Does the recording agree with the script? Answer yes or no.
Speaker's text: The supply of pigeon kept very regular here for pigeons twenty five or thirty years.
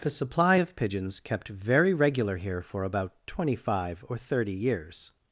no